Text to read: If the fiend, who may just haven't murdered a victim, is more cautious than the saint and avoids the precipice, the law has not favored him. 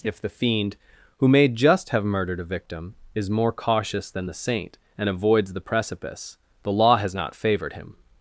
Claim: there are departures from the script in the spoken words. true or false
true